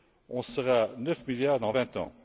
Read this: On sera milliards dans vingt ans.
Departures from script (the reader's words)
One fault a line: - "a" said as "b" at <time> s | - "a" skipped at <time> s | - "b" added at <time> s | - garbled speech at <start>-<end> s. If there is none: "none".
- "neuf" added at 1.0 s